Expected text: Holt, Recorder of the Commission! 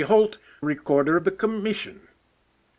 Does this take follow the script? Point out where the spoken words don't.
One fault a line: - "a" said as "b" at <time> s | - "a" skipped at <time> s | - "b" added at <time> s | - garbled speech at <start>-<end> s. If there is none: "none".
none